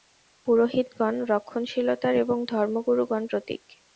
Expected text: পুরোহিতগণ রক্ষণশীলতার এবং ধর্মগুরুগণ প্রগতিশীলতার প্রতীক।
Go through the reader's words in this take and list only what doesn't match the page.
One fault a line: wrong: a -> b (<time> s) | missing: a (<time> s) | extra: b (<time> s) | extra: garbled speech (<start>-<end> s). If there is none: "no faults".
missing: প্রগতিশীলতার (3.2 s)